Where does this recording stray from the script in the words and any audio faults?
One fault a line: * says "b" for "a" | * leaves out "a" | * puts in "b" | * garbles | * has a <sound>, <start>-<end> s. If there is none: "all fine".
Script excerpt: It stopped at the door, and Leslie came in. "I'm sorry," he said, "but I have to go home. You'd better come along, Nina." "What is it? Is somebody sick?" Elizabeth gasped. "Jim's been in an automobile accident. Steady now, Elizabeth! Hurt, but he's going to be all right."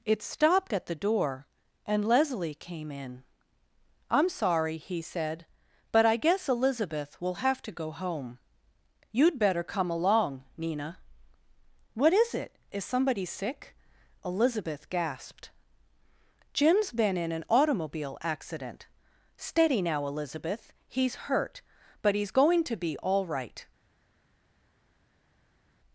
* puts in "guess Elizabeth will"
* puts in "He's"